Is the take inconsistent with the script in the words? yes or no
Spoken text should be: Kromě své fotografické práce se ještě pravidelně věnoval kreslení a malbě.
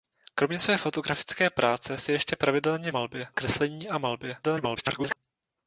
yes